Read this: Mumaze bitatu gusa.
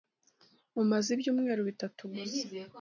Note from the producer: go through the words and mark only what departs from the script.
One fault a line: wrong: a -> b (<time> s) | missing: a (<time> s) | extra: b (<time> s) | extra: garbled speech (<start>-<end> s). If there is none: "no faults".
extra: ibyumweru (1.1 s)